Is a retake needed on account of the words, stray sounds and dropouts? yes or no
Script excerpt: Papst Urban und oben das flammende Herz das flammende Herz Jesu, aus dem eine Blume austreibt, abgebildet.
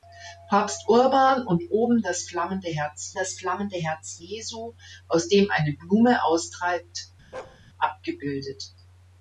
yes